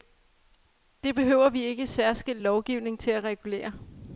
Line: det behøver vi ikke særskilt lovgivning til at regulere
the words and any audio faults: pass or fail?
pass